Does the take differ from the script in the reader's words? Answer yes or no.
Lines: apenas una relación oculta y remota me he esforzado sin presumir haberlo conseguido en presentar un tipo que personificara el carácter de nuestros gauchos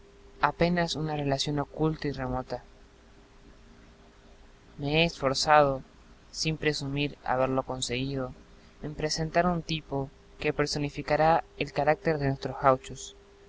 no